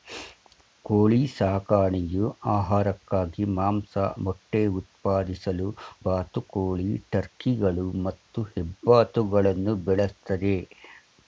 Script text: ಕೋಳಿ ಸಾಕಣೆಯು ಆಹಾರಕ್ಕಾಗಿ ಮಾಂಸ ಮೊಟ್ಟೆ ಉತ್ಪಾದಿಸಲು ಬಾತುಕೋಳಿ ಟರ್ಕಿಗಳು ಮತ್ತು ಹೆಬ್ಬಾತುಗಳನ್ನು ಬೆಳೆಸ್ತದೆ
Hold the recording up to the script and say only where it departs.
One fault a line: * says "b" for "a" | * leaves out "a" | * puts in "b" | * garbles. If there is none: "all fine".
all fine